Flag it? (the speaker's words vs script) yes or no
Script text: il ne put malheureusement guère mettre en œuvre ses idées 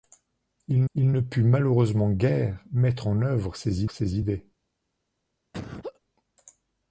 yes